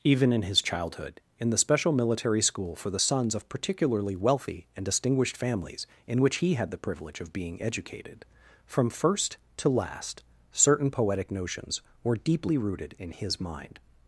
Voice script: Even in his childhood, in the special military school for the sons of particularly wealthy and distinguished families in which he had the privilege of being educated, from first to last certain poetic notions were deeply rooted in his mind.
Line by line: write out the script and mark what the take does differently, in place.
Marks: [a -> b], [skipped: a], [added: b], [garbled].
Even in his childhood, in the special military school for the sons of particularly wealthy and distinguished families in which he had the privilege of being educated, from first to last certain poetic notions were deeply rooted in his mind.